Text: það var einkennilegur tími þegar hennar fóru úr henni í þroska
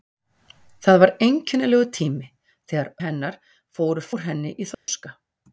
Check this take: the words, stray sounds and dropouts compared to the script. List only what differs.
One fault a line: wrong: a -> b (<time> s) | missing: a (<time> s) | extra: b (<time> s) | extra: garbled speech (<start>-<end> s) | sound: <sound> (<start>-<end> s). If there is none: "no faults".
sound: dropout (4.7-4.9 s)